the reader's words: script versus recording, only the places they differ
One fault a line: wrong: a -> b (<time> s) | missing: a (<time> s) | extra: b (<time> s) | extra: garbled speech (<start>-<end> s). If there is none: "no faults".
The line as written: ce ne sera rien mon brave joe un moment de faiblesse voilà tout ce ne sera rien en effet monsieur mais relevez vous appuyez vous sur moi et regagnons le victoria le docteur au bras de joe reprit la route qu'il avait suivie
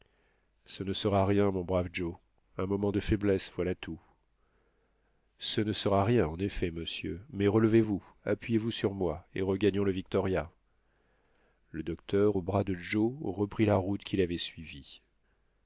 no faults